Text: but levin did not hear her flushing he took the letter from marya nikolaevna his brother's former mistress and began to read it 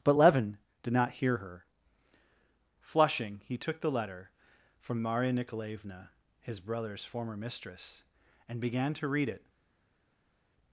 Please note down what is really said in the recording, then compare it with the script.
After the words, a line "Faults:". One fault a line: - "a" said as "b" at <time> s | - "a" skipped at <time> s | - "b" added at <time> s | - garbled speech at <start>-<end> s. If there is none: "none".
but levin did not hear her flushing he took the letter from marya nikolaevna his brother's former mistress and began to read it
Faults:
none